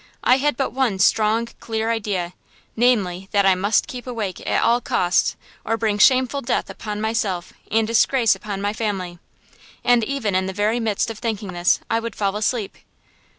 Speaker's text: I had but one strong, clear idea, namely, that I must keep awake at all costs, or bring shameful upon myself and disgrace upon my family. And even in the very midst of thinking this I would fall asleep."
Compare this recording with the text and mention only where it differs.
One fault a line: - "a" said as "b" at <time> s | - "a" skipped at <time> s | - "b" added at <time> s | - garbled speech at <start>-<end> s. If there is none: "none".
- "death" added at 6.4 s